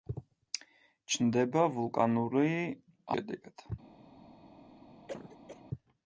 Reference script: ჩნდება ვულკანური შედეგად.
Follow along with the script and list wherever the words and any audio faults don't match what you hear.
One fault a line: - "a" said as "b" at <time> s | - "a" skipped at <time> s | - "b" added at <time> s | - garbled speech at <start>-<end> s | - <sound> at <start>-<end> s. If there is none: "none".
- cough at 5.1-5.6 s